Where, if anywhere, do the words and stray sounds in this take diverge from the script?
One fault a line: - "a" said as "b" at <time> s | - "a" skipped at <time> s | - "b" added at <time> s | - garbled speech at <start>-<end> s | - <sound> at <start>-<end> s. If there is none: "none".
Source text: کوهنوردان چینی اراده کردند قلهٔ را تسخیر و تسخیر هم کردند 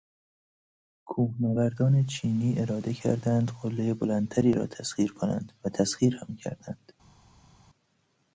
- "بلندتری" added at 3.9 s
- "کنند" added at 5.1 s